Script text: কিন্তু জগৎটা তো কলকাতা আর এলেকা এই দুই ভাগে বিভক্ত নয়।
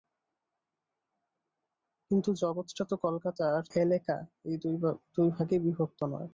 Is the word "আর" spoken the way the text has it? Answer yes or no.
yes